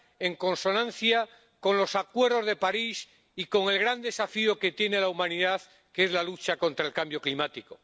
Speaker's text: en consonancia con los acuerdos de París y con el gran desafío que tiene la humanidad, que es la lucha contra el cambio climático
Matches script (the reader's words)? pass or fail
pass